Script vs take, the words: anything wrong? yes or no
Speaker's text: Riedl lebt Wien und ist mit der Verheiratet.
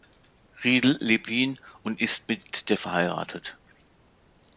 no